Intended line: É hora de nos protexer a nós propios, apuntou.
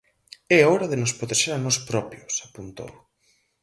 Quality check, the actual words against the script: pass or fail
pass